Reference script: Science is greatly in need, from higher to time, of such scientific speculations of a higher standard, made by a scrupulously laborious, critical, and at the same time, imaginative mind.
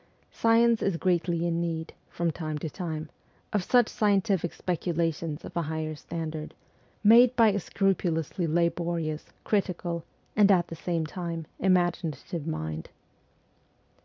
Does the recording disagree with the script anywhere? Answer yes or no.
yes